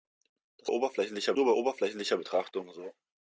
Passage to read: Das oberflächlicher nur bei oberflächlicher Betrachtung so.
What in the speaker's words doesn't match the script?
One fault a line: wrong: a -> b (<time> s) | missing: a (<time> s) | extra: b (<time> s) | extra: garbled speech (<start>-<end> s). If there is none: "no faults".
no faults